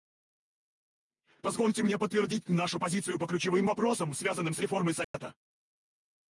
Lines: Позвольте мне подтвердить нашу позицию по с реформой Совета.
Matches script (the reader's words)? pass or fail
fail